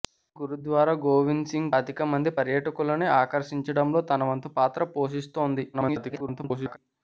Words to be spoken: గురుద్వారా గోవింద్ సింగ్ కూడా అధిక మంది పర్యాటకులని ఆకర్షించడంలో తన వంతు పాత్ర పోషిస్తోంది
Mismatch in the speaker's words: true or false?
true